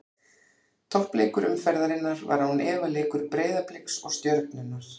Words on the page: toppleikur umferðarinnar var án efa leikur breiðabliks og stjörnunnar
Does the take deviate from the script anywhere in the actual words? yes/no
no